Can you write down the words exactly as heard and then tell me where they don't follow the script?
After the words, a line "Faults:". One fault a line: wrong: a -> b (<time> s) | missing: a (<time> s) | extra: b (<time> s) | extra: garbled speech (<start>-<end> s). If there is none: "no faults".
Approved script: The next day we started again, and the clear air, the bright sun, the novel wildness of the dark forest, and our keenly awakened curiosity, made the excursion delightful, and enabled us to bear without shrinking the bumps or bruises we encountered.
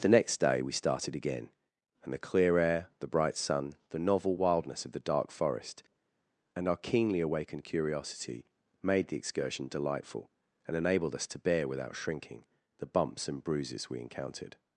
The next day we started again, and the clear air, the bright sun, the novel wildness of the dark forest, and our keenly awakened curiosity, made the excursion delightful, and enabled us to bear without shrinking the bumps and bruises we encountered.
Faults:
wrong: or -> and (13.3 s)